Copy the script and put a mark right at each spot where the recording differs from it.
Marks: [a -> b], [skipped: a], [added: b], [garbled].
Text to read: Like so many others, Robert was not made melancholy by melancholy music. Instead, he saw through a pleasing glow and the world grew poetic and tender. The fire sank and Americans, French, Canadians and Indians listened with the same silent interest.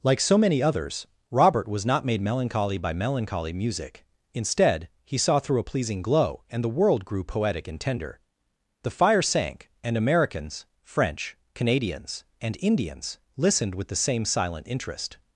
Like so many others, Robert was not made melancholy by melancholy music. Instead, he saw through a pleasing glow and the world grew poetic and tender. The fire sank and Americans, French, Canadians and Indians listened with the same silent interest.